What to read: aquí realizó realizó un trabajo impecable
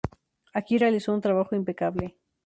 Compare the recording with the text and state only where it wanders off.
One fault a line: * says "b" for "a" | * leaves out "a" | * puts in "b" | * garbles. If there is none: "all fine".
* leaves out "realizó"